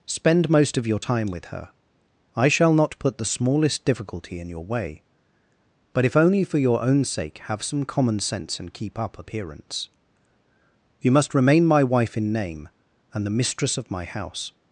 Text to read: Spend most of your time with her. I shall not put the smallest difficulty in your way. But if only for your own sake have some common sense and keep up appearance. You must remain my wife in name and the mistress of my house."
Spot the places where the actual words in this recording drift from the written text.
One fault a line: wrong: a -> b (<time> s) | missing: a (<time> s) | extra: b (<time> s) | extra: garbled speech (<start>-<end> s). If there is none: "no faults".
no faults